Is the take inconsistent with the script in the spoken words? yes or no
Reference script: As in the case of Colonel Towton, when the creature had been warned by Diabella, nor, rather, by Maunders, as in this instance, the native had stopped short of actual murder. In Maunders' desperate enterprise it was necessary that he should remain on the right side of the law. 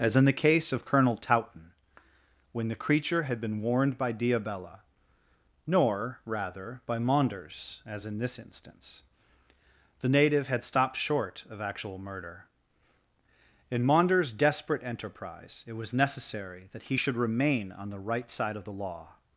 no